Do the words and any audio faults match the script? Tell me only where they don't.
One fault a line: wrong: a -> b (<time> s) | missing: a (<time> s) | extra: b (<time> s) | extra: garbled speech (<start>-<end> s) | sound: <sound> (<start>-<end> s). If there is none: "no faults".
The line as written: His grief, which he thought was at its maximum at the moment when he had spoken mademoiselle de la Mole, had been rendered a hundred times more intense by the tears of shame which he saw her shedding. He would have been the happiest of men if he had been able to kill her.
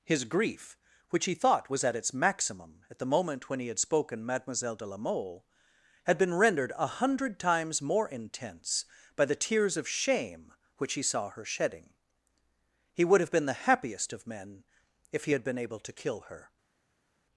no faults